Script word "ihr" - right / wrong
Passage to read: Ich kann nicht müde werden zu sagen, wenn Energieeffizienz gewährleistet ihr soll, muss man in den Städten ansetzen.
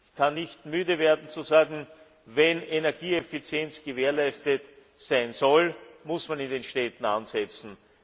wrong